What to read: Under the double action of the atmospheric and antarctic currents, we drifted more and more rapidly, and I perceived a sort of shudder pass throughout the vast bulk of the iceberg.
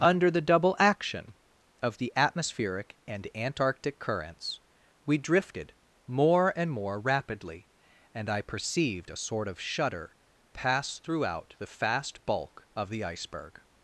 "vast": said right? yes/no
no